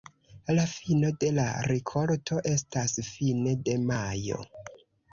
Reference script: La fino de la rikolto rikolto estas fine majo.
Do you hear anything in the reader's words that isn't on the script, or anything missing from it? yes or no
yes